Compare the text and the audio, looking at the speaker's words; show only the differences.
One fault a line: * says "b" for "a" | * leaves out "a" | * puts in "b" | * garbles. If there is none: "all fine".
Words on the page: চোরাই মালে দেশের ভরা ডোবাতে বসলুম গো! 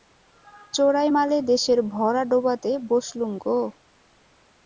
all fine